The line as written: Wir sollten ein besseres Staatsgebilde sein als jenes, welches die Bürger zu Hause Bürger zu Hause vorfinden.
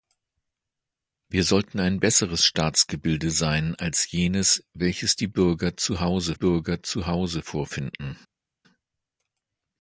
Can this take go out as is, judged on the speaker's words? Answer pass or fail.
pass